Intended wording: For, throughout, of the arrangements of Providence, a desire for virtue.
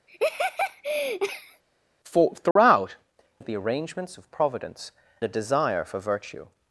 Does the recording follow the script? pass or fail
pass